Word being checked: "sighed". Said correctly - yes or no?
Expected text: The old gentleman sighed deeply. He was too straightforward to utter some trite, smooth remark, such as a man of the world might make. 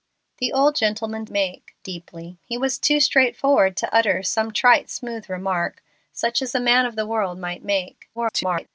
no